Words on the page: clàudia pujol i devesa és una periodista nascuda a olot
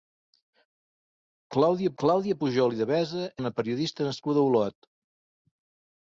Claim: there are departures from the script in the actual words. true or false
true